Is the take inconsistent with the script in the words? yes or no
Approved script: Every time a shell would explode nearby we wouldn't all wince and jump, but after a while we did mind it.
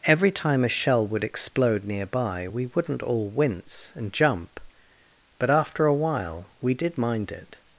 no